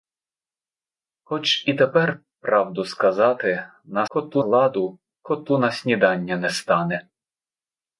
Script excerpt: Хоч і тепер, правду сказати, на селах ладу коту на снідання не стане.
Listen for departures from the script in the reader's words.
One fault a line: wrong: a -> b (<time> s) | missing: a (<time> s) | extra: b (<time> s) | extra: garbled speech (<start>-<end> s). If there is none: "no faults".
wrong: селах -> коту (4.1 s)